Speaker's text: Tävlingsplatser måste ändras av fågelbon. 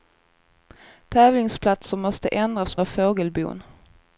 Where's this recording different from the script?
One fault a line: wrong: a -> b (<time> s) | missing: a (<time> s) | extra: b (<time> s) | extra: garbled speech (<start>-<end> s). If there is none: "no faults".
no faults